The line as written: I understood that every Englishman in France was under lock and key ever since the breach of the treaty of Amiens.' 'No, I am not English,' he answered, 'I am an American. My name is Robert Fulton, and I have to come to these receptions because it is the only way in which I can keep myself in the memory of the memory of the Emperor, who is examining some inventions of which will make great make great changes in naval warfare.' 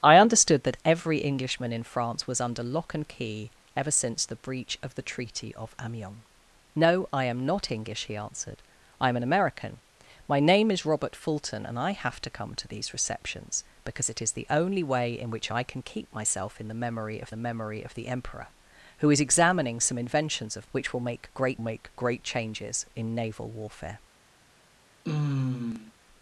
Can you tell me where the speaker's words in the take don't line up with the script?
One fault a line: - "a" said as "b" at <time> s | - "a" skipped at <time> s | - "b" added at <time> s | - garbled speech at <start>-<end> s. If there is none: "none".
none